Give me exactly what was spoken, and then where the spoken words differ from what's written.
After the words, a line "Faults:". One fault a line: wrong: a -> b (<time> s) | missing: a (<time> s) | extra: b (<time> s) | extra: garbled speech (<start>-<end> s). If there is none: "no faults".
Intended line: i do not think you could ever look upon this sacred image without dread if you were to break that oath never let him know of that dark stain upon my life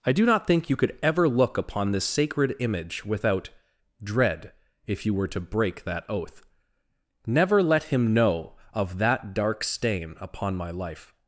i do not think you could ever look upon this sacred image without dread if you were to break that oath never let him know of that dark stain upon my life
Faults:
no faults